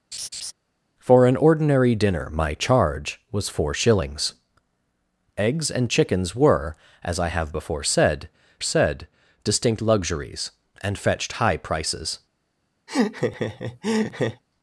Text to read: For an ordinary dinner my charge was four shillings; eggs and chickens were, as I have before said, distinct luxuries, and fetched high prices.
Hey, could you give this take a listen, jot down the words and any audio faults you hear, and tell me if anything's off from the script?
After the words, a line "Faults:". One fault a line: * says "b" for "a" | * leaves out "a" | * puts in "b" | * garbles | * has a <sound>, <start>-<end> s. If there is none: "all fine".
For an ordinary dinner my charge was four shillings; eggs and chickens were, as I have before said said, distinct luxuries, and fetched high prices.
Faults:
* has a laugh, 0.1-0.5 s
* puts in "said"
* has a laugh, 12.9-14.4 s